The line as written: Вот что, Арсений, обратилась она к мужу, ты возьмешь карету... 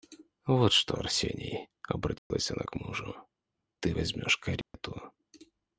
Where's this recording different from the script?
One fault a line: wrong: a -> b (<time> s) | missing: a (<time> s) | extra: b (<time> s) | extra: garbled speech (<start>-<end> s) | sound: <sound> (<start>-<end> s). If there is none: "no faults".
sound: dropout (2.2-2.3 s)
sound: dropout (4.6-4.7 s)